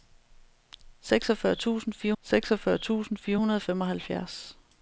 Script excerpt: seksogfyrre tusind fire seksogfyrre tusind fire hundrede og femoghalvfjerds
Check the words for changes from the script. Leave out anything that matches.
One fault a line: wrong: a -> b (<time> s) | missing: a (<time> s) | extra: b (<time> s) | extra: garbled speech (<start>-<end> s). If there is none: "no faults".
no faults